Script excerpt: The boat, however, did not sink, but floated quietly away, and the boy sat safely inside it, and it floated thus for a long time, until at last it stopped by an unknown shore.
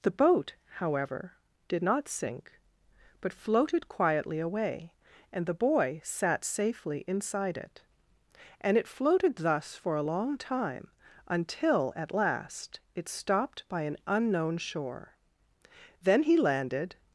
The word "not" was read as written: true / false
true